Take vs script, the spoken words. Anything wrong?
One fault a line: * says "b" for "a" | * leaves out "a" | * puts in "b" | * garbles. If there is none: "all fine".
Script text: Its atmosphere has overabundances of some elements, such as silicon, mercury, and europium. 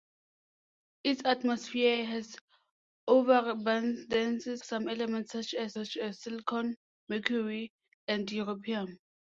* leaves out "of"
* puts in "such as"